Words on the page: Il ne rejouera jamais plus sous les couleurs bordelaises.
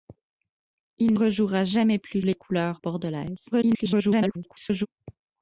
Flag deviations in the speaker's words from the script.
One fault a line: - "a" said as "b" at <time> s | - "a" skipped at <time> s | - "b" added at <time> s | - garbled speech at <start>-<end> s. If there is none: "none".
- "ne" skipped at 1.1 s
- "sous" skipped at 2.2 s
- garbled speech at 3.5-4.9 s